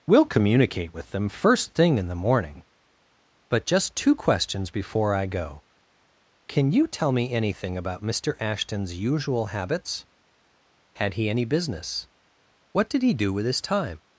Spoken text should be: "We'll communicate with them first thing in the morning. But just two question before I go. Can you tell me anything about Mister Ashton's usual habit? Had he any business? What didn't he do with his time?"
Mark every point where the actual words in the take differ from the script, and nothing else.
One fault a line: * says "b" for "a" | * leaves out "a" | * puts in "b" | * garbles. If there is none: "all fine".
* says "questions" for "question"
* says "habits" for "habit"
* says "did" for "didn't"